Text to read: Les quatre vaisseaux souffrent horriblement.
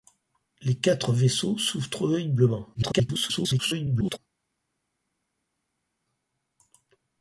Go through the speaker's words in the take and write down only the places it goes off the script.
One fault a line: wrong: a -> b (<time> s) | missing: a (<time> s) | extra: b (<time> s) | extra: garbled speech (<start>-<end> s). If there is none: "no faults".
extra: garbled speech (2.7-4.2 s)